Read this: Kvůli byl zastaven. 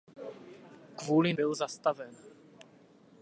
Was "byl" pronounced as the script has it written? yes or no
yes